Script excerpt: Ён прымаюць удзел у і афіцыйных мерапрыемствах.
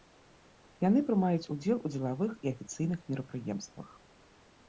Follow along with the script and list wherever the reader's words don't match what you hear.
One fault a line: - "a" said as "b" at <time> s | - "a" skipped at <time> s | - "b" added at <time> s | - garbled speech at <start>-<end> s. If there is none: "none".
- "Ён" said as "Яны" at 0.8 s
- "дзелавых" added at 1.9 s